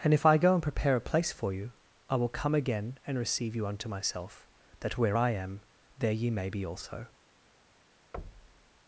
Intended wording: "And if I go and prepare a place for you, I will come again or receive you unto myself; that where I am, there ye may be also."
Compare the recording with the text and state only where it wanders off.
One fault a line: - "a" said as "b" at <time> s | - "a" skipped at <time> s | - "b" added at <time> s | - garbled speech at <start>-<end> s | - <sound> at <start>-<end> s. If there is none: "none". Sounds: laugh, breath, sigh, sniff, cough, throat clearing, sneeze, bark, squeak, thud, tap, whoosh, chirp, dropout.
- "or" said as "and" at 3.0 s
- thud at 8.1-8.7 s